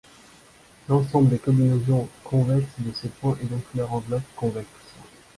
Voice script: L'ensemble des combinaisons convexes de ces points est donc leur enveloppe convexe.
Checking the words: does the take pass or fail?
pass